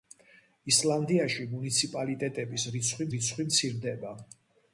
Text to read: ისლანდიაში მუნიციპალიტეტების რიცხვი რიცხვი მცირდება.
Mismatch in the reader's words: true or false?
false